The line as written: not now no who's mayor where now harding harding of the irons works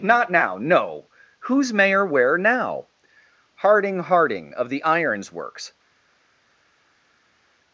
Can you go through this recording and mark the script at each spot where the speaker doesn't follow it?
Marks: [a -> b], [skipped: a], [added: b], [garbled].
not now no who's mayor where now harding harding of the irons works